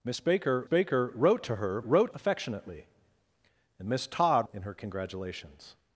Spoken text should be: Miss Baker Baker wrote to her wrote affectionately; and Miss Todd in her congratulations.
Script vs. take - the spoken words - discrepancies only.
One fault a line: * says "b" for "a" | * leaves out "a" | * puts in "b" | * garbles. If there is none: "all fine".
all fine